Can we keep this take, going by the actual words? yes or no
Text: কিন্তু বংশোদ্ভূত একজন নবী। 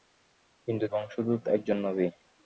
yes